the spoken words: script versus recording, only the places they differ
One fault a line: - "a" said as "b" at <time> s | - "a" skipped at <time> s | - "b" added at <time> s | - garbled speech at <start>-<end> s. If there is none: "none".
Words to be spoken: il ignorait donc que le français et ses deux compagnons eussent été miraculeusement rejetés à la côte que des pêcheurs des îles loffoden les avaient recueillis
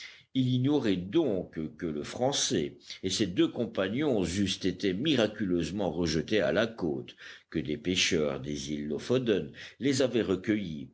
none